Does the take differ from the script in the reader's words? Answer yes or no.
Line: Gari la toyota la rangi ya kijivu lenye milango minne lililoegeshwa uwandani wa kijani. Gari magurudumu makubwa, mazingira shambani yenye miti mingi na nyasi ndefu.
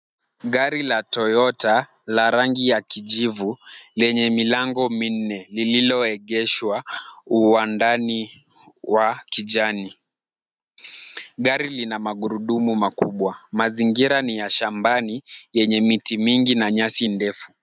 yes